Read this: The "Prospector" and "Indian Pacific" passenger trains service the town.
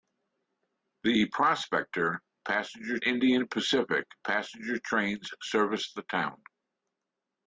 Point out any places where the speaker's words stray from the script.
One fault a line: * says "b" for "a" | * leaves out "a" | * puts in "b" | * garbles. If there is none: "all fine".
* says "passenger" for "and"